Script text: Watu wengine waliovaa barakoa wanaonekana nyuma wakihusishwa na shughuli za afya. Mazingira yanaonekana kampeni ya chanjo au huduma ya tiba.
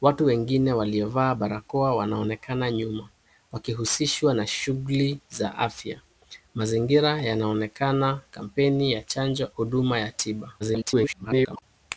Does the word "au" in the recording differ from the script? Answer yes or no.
yes